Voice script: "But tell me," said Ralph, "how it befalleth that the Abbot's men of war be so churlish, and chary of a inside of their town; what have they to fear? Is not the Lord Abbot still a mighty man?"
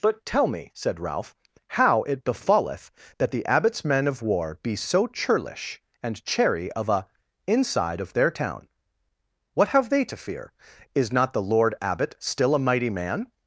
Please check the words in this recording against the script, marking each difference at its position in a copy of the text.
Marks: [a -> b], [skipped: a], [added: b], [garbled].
"But tell me," said Ralph, "how it befalleth that the Abbot's men of war be so churlish, and chary of a inside of their town; what have they to fear? Is not the Lord Abbot still a mighty man?"